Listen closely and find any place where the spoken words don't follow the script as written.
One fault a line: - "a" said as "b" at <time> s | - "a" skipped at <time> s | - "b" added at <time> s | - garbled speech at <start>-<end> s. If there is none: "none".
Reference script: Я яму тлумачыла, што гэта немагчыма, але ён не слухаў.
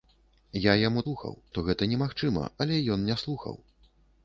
- "тлумачыла" said as "слухаў" at 1.0 s